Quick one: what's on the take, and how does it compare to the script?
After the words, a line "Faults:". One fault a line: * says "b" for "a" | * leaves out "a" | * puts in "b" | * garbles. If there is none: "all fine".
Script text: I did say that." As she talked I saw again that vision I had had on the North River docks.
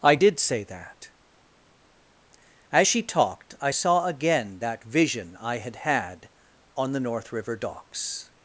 I did say that." As she talked I saw again that vision I had had on the North River docks.
Faults:
all fine